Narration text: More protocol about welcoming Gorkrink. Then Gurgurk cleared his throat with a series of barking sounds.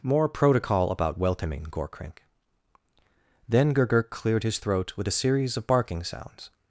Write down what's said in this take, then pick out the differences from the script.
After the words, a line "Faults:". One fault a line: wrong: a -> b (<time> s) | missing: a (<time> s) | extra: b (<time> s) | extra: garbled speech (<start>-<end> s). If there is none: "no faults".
More protocol about welcoming Gorkrink. Then Gurgurk cleared his throat with a series of barking sounds.
Faults:
no faults